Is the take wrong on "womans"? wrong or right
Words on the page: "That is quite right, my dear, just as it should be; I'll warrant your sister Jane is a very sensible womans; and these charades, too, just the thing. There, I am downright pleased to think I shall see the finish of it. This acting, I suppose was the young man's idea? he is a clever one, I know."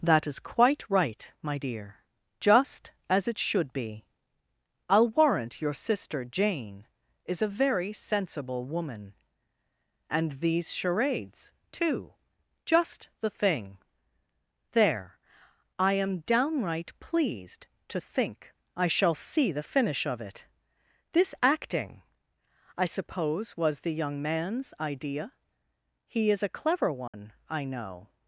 wrong